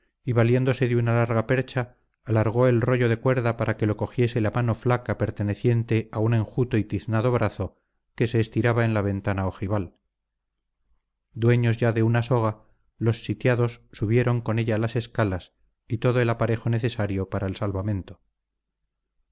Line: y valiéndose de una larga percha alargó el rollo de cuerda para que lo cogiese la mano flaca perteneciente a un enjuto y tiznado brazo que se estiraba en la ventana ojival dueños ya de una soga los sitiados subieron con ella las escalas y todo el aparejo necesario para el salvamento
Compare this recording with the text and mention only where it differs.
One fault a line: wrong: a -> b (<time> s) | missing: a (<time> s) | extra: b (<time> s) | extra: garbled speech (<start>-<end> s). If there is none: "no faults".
no faults